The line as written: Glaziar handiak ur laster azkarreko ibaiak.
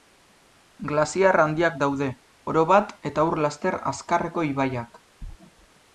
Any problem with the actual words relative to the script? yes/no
yes